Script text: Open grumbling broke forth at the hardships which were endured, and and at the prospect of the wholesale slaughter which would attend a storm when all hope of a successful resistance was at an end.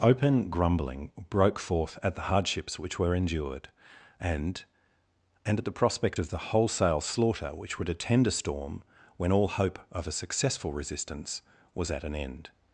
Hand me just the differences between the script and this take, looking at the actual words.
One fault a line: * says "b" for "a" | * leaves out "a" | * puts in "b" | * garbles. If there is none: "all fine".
all fine